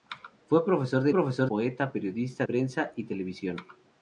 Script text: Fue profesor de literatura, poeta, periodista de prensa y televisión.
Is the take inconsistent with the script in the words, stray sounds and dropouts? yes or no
yes